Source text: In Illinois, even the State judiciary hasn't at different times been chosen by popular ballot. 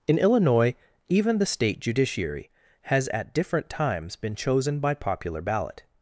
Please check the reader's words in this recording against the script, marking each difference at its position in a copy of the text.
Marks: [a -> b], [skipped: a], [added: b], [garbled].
In Illinois, even the State judiciary [hasn't -> has] at different times been chosen by popular ballot.